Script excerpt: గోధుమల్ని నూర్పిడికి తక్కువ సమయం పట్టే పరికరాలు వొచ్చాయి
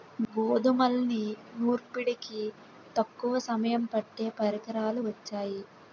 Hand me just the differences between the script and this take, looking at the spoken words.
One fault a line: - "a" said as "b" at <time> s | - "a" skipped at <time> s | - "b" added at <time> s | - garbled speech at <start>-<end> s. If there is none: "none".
none